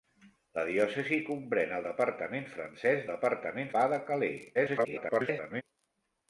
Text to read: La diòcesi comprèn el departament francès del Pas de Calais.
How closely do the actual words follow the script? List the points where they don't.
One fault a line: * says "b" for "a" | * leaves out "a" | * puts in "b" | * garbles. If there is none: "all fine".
* says "departament" for "del"
* garbles